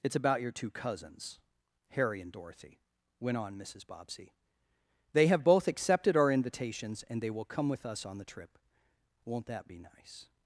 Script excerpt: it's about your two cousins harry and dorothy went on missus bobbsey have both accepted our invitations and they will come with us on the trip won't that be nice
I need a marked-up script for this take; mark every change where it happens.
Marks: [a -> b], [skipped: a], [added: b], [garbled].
it's about your two cousins harry and dorothy went on missus bobbsey [added: they] have both accepted our invitations and they will come with us on the trip won't that be nice